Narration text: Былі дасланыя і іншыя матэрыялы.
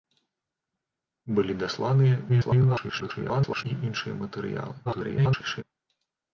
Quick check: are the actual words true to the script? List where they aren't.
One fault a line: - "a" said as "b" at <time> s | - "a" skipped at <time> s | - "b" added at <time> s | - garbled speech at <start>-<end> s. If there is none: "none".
- garbled speech at 2.3-3.7 s
- garbled speech at 4.9-5.6 s